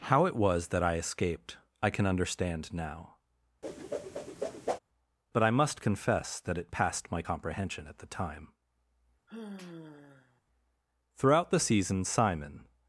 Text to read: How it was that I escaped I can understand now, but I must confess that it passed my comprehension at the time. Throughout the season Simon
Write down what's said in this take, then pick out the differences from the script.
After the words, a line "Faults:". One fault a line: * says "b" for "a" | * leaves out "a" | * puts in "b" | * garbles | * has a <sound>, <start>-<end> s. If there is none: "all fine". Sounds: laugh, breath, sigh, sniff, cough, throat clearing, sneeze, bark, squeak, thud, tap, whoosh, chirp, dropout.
How it was that I escaped I can understand now, but I must confess that it passed my comprehension at the time. Throughout the season Simon
Faults:
* has a whoosh, 3.6-4.8 s
* has a sigh, 9.3-10.4 s